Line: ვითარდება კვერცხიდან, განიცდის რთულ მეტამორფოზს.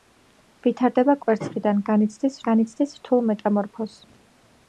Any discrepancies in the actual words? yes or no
yes